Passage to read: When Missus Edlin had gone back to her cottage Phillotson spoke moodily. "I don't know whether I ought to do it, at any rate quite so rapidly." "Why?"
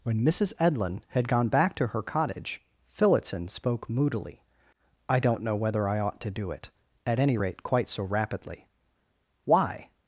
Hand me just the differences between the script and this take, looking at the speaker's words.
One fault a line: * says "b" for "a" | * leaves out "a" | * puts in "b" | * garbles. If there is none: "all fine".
all fine